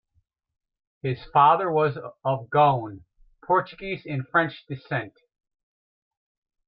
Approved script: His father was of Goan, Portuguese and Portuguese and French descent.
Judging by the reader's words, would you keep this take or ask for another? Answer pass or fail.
fail